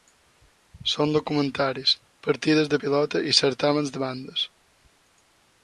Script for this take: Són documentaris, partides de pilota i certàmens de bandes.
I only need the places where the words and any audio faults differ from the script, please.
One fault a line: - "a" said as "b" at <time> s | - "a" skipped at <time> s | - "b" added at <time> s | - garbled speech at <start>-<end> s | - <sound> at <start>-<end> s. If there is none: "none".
none